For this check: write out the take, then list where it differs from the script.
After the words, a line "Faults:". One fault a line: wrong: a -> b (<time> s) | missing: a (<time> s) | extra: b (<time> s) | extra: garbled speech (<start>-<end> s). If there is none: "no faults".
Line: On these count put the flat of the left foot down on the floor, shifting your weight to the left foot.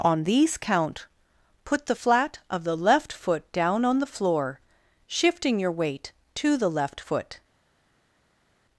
On these count put the flat of the left foot down on the floor, shifting your weight to the left foot.
Faults:
no faults